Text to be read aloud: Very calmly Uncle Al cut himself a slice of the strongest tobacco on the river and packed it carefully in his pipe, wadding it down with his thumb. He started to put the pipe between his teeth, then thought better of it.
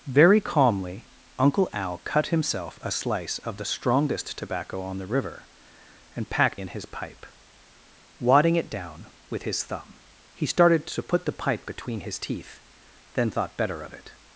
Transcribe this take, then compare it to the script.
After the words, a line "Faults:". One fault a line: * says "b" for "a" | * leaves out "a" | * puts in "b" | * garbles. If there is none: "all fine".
Very calmly Uncle Al cut himself a slice of the strongest tobacco on the river and packed in his pipe, wadding it down with his thumb. He started to put the pipe between his teeth, then thought better of it.
Faults:
* leaves out "it carefully"